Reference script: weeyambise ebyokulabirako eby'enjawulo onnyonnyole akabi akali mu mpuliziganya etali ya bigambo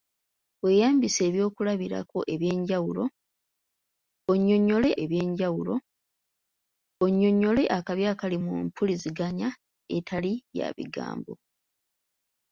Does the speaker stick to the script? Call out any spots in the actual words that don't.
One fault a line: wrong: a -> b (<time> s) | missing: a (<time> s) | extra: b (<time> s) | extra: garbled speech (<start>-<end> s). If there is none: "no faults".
extra: eby'enjawulo onnyonnyole (5.0 s)